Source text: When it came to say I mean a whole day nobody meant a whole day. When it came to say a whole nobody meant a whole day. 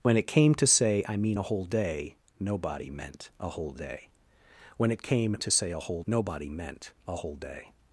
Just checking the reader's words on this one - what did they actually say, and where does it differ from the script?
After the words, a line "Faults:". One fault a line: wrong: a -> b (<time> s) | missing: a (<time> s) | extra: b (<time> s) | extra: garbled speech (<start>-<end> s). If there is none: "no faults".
When it came to say I mean a whole day nobody meant a whole day. When it came to say a whole nobody meant a whole day.
Faults:
no faults